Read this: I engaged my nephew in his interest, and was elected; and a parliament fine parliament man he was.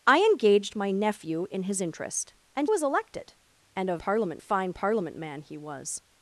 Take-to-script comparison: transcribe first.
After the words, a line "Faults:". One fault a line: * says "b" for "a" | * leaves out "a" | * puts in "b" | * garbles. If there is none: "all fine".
I engaged my nephew in his interest, and was elected; and a parliament fine parliament man he was.
Faults:
all fine